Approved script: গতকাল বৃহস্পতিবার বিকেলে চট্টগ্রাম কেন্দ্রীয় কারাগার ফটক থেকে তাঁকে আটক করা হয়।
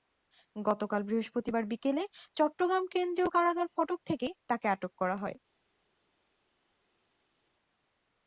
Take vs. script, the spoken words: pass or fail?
pass